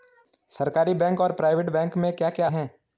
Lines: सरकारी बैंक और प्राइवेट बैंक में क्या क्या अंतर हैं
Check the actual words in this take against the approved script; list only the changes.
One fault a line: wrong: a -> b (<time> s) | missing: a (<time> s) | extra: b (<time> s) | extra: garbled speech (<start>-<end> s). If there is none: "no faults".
missing: अंतर (2.5 s)